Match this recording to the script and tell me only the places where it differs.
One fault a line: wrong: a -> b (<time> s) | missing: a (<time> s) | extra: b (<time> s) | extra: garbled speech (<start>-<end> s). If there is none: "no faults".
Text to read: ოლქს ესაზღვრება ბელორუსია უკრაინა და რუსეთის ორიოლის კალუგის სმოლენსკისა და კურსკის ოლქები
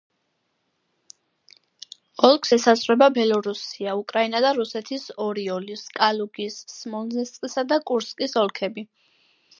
no faults